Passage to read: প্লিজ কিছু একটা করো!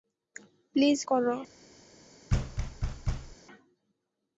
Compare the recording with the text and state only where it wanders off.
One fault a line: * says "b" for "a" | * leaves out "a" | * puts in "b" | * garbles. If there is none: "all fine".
* leaves out "কিছু একটা"